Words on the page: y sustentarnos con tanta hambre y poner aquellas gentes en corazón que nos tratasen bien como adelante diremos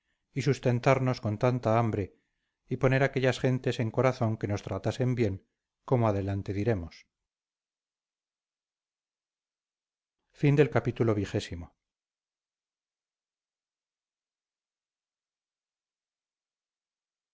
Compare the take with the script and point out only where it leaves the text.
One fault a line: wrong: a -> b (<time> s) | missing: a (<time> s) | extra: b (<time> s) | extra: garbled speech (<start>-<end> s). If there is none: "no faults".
no faults